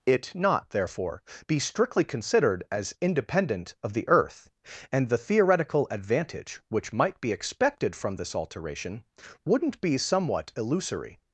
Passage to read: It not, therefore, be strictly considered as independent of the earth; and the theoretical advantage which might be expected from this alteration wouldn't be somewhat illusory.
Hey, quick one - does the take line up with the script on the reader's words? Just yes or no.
yes